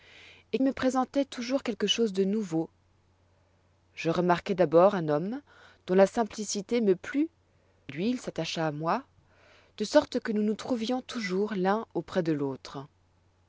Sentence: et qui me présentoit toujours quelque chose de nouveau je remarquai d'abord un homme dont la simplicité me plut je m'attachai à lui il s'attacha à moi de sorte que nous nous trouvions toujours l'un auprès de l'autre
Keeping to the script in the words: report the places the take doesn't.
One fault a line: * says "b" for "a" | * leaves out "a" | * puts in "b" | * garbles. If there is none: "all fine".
* leaves out "qui"
* leaves out "je m'attachai à"